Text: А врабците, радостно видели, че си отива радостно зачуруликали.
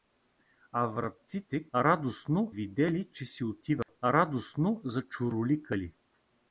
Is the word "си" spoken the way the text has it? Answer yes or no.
yes